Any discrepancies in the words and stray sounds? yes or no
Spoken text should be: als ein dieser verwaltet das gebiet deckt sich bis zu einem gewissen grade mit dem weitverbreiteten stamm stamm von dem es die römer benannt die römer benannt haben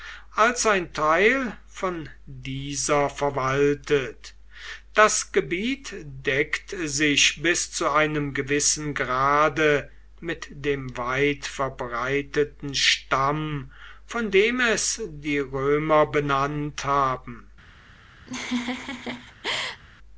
yes